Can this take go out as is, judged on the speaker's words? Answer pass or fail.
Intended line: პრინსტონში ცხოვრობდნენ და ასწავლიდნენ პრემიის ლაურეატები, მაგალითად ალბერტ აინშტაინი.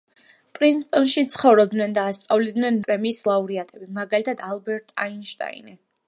pass